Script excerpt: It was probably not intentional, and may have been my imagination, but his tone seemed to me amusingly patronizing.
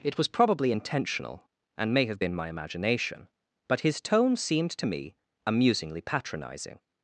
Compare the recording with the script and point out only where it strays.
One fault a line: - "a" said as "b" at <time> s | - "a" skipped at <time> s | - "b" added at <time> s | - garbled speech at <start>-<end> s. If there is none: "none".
- "not" skipped at 0.7 s